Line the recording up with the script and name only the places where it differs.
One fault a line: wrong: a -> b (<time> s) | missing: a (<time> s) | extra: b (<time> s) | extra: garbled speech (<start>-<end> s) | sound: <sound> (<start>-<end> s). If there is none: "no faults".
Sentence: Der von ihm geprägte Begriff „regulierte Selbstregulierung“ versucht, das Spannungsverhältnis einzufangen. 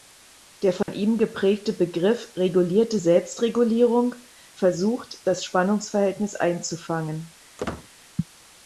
sound: dropout (0.8-0.9 s)
sound: squeak (7.6-7.9 s)